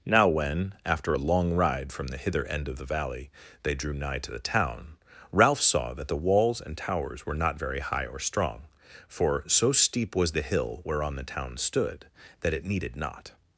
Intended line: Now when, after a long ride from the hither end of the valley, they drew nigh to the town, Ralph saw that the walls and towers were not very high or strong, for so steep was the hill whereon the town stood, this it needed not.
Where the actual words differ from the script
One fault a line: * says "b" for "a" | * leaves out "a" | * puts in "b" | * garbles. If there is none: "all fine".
* says "that" for "this"